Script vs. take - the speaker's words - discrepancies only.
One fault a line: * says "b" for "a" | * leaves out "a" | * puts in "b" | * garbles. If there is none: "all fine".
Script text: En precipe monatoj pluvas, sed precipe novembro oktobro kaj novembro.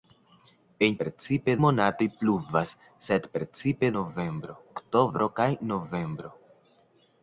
all fine